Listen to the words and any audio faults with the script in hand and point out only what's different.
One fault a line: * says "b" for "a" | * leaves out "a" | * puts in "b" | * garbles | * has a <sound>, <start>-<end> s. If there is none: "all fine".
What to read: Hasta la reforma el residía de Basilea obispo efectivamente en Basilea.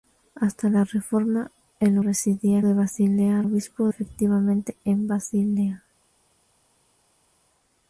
all fine